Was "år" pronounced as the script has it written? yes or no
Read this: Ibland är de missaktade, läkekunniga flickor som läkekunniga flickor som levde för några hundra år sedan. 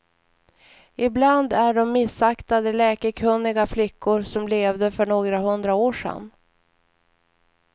yes